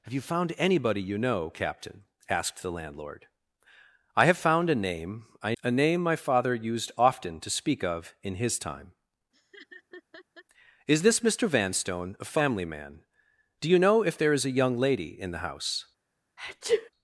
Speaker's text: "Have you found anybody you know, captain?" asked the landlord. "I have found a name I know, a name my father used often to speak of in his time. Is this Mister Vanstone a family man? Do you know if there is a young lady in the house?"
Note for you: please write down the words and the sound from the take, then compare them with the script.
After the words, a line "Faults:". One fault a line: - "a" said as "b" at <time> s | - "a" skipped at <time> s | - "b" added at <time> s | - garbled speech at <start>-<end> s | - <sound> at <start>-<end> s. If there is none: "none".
"Have you found anybody you know, captain?" asked the landlord. "I have found a name I a name my father used often to speak of in his time. Is this Mister Vanstone a family man? Do you know if there is a young lady in the house?"
Faults:
- "know" skipped at 5.5 s
- laugh at 9.3-10.4 s
- sneeze at 16.4-16.9 s